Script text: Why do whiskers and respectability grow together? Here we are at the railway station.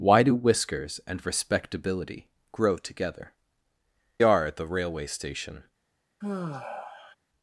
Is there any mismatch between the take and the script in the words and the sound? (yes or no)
yes